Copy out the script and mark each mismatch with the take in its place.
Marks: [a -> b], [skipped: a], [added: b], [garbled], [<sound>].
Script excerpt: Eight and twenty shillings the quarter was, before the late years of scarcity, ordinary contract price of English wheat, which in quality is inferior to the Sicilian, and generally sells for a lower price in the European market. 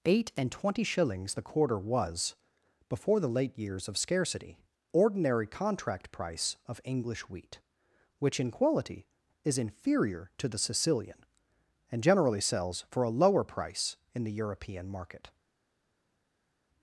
Eight and twenty shillings the quarter was, before the late years of scarcity, ordinary contract price of English wheat, which in quality is inferior to the Sicilian, and generally sells for a lower price in the European market.